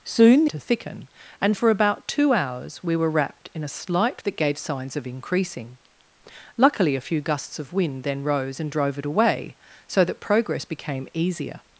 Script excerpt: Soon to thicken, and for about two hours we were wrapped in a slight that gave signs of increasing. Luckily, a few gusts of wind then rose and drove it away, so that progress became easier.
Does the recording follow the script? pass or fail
pass